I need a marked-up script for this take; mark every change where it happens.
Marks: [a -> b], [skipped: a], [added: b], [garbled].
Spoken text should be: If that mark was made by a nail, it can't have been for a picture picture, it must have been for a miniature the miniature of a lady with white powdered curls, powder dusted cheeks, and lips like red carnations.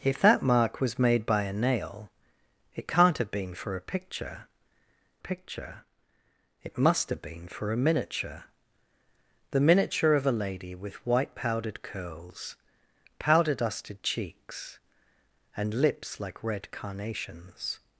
If that mark was made by a nail, it can't have been for a picture picture, it must have been for a miniature the miniature of a lady with white powdered curls, powder dusted cheeks, and lips like red carnations.